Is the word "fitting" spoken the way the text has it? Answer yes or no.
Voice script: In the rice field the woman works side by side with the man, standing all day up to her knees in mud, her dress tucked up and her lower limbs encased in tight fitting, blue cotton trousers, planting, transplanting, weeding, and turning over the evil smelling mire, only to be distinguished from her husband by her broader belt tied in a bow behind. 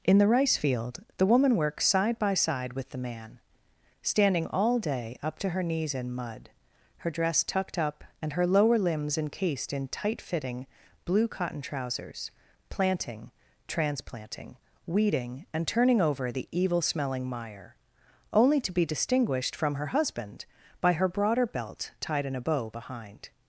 yes